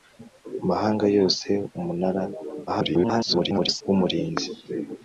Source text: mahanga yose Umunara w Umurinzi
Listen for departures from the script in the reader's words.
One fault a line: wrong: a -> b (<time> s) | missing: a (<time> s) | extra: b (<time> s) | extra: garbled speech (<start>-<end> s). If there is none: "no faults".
extra: garbled speech (2.7-3.8 s)